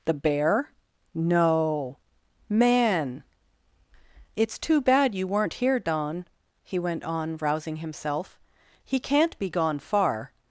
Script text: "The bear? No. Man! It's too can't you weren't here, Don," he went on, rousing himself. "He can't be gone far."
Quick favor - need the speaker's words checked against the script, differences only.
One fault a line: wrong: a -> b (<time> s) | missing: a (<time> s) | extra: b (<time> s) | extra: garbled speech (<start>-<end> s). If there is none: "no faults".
wrong: can't -> bad (4.8 s)